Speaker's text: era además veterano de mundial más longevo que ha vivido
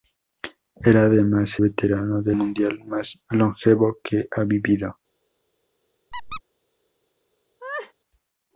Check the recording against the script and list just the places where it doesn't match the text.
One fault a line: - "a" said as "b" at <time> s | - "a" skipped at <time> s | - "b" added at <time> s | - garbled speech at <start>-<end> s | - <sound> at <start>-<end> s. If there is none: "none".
- squeak at 6.1-6.4 s
- laugh at 7.6-7.9 s